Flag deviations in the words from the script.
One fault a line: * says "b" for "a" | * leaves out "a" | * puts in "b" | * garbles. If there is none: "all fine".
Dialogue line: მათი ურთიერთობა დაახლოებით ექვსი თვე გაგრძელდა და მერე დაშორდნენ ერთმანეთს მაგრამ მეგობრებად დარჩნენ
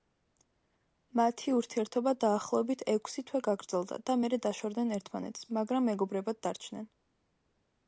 all fine